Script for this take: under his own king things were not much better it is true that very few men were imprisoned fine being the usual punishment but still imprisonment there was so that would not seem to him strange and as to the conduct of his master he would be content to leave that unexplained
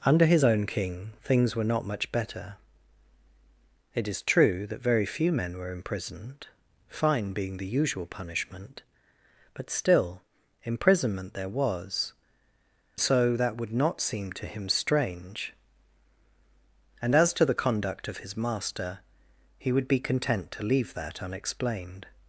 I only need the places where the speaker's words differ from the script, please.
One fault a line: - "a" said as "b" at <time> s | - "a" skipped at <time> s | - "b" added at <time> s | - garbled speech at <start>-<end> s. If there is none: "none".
none